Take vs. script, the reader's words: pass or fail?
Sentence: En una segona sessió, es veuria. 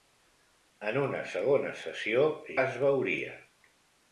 pass